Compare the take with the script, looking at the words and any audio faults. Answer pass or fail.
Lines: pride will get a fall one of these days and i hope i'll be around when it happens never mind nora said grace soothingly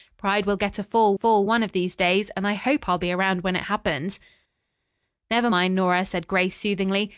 fail